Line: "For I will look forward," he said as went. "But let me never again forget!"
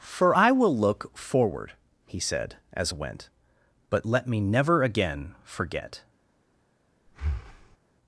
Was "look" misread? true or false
false